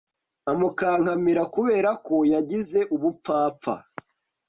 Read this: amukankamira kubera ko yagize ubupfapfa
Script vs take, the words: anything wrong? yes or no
no